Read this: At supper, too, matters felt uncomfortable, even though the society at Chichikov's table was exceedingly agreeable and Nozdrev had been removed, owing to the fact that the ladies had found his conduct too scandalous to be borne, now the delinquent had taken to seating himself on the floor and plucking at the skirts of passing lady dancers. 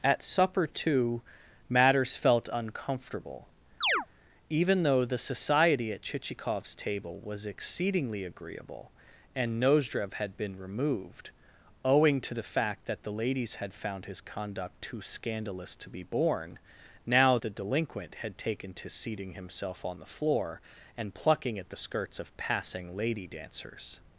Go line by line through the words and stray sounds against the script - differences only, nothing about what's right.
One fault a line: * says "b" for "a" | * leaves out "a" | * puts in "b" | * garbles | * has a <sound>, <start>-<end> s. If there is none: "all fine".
* has a chirp, 3.8-4.1 s